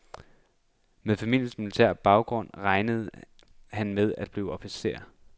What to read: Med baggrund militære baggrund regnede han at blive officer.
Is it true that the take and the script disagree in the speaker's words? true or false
true